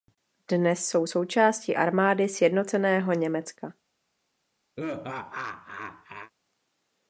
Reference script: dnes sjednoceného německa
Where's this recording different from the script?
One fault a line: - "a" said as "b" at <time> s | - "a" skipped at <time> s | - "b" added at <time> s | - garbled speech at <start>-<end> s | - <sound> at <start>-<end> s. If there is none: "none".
- "jsou součástí armády" added at 0.9 s
- laugh at 4.8-6.3 s